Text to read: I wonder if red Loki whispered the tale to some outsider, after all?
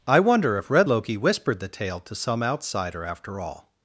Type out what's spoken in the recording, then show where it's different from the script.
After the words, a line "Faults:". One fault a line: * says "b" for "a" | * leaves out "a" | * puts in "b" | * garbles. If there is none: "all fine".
I wonder if red Loki whispered the tale to some outsider, after all?
Faults:
all fine